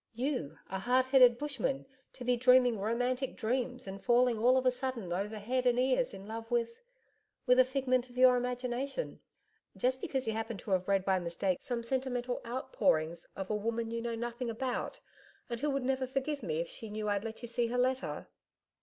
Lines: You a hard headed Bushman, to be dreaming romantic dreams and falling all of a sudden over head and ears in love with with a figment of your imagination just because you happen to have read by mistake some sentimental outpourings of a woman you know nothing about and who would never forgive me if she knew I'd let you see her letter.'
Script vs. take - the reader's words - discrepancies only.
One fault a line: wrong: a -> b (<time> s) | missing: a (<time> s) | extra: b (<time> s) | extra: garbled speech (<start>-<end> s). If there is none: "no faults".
no faults